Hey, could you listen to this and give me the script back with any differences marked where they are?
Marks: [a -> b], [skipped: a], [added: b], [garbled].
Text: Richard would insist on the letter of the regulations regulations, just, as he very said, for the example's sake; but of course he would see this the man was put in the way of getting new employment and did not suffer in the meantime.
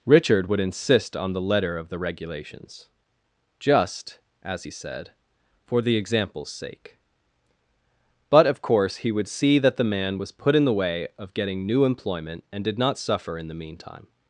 Richard would insist on the letter of the regulations [skipped: regulations,] just, as he [skipped: very] said, for the example's sake; but of course he would see [this -> that] the man was put in the way of getting new employment and did not suffer in the meantime.